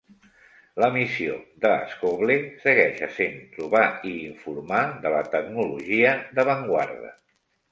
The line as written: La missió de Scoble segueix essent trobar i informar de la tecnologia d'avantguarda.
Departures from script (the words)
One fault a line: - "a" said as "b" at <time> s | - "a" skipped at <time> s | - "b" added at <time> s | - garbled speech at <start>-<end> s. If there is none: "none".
none